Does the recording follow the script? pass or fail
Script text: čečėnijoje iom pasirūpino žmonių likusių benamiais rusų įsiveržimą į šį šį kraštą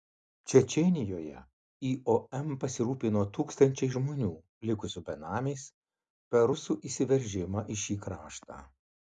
fail